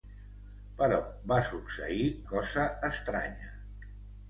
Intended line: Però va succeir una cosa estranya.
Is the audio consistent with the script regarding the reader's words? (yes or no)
no